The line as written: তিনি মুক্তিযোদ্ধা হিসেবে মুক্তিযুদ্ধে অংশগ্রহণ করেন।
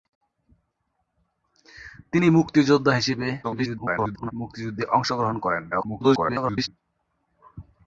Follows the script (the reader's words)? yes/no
no